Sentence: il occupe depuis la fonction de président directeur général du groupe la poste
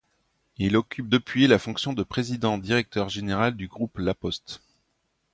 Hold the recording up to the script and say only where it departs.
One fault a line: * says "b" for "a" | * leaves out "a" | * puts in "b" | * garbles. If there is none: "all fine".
all fine